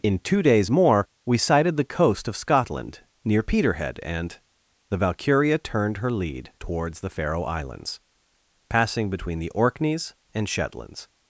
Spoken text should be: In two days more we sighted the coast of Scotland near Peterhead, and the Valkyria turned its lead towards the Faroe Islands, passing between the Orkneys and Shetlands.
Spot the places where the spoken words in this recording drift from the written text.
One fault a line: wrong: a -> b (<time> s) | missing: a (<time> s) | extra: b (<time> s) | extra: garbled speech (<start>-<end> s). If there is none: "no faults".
wrong: its -> her (6.0 s)